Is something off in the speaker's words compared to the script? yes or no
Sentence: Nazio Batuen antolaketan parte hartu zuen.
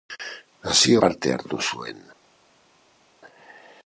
yes